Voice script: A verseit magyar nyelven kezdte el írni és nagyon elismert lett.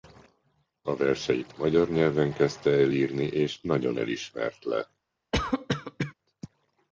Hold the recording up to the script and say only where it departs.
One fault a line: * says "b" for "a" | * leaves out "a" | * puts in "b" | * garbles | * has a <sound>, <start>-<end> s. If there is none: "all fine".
* has a cough, 5.3-6.1 s